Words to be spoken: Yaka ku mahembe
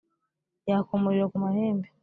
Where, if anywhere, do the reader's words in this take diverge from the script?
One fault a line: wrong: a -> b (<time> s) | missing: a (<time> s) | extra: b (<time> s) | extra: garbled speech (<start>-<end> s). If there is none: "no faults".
extra: umuriro (1.0 s)